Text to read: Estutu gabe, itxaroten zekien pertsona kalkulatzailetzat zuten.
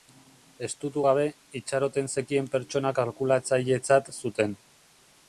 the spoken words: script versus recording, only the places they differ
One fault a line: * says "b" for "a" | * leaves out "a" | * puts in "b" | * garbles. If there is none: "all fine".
all fine